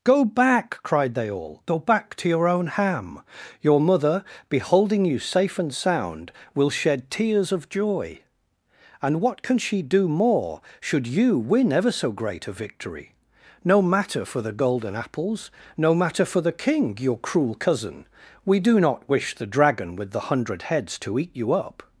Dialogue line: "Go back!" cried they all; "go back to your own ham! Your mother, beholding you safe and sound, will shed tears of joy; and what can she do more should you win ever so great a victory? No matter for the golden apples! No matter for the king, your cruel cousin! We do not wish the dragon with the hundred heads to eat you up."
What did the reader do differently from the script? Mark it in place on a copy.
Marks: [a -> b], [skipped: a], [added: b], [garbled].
"Go back!" cried they all; "go back to your own ham! Your mother, beholding you safe and sound, will shed tears of joy; and what can she do more should you win ever so great a victory? No matter for the golden apples! No matter for the king, your cruel cousin! We do not wish the dragon with the hundred heads to eat you up."